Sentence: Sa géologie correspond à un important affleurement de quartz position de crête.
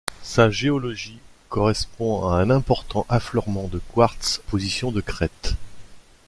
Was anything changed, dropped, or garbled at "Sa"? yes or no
no